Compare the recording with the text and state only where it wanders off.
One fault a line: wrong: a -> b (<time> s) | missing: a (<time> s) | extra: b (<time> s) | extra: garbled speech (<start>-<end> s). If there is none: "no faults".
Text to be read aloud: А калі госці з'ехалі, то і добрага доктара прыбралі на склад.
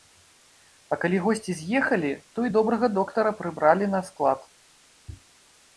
no faults